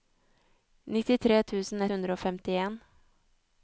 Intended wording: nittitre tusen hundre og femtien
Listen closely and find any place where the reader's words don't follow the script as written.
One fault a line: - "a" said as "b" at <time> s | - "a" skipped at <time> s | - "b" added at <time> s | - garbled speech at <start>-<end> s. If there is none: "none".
none